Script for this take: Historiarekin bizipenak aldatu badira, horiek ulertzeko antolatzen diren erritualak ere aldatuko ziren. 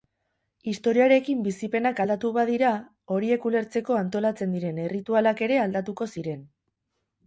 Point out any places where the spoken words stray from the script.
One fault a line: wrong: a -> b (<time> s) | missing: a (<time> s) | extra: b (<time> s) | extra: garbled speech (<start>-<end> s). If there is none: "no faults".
no faults